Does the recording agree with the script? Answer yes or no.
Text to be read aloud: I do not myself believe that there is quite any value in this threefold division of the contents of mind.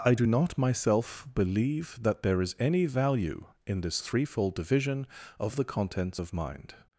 no